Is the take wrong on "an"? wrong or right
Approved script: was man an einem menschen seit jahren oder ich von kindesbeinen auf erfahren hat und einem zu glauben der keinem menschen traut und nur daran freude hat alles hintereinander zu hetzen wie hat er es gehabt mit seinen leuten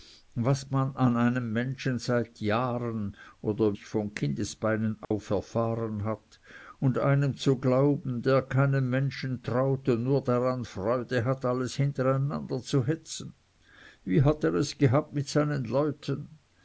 right